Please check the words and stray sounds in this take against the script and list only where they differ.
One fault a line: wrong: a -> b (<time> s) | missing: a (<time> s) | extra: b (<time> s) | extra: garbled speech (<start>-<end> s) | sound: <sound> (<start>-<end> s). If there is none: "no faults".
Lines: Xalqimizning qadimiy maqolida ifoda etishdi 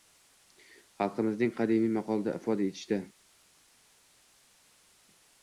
no faults